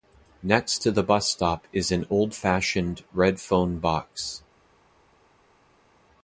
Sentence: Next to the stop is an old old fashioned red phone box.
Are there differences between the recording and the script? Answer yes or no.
yes